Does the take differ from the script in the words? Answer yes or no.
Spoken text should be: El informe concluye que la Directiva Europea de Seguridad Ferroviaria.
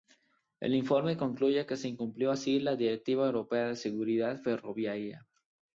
yes